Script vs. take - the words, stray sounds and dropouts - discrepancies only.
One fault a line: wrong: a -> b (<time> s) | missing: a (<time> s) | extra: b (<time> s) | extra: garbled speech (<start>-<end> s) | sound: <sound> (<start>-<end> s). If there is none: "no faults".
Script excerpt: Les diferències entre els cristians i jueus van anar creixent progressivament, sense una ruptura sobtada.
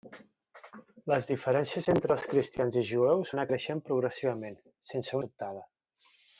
missing: van (3.4 s)
missing: una ruptura (5.2 s)